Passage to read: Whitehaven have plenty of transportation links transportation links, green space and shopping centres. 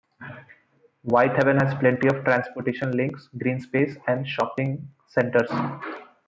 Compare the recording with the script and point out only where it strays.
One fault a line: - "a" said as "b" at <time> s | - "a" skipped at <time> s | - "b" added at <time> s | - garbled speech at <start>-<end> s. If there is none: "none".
- "have" said as "has" at 1.6 s
- "transportation links" skipped at 3.3 s